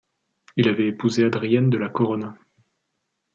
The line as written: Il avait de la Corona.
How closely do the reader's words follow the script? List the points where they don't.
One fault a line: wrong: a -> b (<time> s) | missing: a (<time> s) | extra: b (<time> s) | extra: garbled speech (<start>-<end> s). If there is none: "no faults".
extra: épousé Adrienne (0.9 s)